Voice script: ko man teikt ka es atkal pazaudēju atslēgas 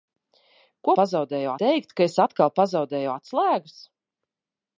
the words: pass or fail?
fail